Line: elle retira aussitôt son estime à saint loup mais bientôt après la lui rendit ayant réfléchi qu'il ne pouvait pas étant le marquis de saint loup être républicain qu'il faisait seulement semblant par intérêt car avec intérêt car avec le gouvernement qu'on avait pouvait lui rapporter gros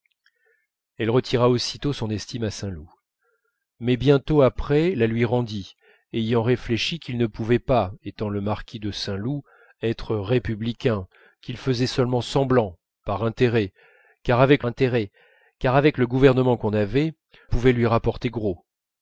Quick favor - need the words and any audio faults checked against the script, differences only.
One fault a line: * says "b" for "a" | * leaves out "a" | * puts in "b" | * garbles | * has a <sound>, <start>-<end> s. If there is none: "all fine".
all fine